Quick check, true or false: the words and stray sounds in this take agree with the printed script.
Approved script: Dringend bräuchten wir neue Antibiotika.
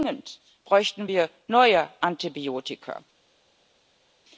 true